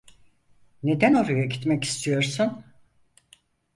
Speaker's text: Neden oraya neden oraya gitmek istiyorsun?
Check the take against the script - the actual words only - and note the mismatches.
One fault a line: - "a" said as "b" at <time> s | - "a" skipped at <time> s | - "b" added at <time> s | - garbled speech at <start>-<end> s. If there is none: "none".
- "neden oraya" skipped at 1.4 s